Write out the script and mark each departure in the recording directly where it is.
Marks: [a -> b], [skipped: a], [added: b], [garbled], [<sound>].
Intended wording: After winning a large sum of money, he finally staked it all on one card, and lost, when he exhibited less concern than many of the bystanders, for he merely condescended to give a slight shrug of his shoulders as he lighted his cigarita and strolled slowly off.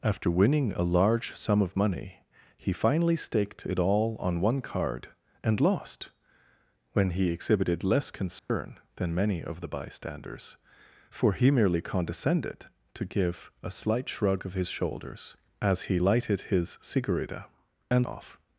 After winning a large sum of money, he finally staked it all on one card, and lost, when he exhibited less concern [dropout] than many of the bystanders, for he merely condescended to give a slight shrug of his shoulders as he lighted his cigarita and [skipped: strolled slowly] off.